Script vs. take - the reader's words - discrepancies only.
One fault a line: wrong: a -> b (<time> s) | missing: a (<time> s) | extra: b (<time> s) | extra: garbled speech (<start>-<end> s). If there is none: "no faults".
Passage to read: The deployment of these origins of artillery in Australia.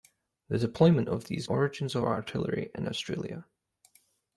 no faults